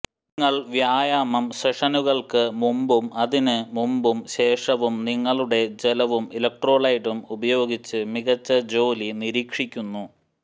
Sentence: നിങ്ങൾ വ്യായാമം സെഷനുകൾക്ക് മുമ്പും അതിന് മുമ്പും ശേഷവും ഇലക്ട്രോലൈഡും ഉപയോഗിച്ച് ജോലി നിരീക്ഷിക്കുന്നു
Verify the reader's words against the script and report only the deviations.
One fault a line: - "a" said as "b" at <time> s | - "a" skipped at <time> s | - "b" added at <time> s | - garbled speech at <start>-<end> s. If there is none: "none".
- "നിങ്ങളുടെ ജലവും" added at 5.1 s
- "മികച്ച" added at 8.1 s